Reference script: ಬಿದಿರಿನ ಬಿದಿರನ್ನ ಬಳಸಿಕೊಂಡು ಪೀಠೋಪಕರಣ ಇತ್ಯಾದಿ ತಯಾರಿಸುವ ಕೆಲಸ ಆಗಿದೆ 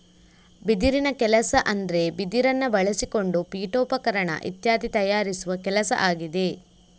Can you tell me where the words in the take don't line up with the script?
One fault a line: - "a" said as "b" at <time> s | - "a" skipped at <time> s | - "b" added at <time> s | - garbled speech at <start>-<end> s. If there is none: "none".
- "ಕೆಲಸ ಅಂದ್ರೆ" added at 1.2 s